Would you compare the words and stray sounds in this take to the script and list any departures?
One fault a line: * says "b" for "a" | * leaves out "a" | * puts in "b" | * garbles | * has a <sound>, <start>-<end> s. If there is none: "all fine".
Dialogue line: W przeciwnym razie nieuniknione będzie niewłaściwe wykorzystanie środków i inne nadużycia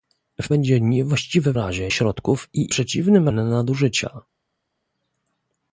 * leaves out "przeciwnym razie nieuniknione"
* says "razie" for "wykorzystanie"
* says "przeciwnym" for "inne"